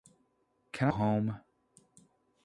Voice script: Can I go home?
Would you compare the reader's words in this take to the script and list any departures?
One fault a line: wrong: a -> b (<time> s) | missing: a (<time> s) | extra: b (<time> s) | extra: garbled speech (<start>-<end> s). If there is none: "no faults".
missing: I go (0.9 s)